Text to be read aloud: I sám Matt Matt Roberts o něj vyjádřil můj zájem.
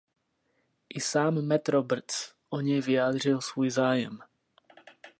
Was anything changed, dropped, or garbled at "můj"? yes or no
yes